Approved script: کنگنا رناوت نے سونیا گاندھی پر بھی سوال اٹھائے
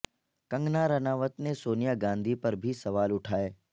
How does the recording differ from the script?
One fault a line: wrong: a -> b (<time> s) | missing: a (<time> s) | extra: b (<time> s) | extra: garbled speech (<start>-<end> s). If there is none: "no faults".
no faults